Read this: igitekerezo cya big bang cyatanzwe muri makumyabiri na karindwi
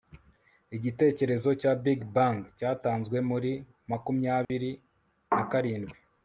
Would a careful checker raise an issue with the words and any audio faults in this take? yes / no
yes